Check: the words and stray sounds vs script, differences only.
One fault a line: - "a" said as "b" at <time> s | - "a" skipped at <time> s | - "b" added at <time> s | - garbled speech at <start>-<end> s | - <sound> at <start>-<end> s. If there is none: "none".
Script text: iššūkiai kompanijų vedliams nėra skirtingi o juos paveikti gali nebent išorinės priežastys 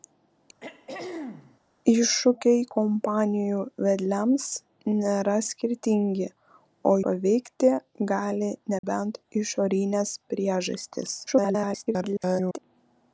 - throat clearing at 0.6-1.6 s
- "juos" skipped at 6.9 s
- dropout at 8.8-8.8 s
- garbled speech at 11.3-12.6 s